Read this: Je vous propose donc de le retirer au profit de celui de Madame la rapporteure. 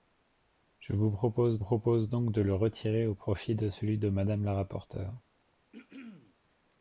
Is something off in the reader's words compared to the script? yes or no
yes